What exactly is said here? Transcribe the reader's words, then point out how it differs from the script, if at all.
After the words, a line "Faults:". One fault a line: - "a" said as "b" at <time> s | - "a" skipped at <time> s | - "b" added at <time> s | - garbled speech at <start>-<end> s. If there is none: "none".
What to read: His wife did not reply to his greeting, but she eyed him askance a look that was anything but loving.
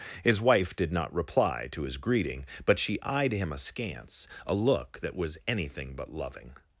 His wife did not reply to his greeting, but she eyed him askance a look that was anything but loving.
Faults:
none